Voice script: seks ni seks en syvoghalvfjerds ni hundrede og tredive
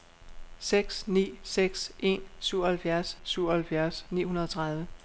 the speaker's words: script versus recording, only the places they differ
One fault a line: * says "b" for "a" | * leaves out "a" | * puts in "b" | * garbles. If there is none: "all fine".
* puts in "syvoghalvfjerds"